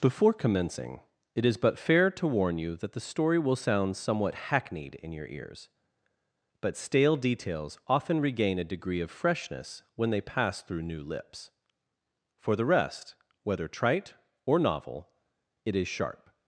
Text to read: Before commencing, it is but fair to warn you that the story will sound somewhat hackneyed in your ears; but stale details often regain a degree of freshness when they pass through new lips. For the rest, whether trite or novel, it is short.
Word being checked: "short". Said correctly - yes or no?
no